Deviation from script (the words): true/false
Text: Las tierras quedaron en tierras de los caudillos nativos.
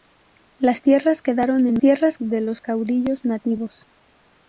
false